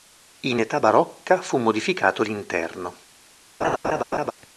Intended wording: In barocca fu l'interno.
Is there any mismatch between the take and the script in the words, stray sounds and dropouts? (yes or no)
yes